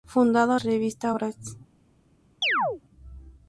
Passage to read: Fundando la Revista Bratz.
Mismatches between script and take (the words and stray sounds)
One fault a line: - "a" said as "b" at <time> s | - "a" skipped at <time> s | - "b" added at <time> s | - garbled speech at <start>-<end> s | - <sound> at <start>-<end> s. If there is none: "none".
- "la" skipped at 0.6 s
- chirp at 2.4-2.8 s